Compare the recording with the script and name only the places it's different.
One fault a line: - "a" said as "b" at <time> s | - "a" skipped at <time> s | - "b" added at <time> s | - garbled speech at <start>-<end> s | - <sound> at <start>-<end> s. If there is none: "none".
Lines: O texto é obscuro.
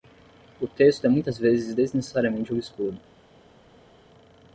- "muitas vezes desnecessariamente" added at 1.1 s